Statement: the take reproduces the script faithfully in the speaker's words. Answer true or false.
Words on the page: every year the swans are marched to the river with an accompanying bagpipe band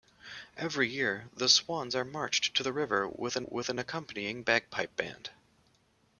false